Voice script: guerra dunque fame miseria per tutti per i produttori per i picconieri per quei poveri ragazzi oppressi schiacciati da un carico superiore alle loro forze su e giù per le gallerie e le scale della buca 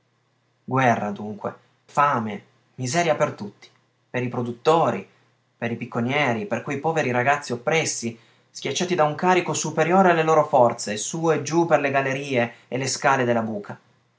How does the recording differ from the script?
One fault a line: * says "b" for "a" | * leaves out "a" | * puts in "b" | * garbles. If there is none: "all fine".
all fine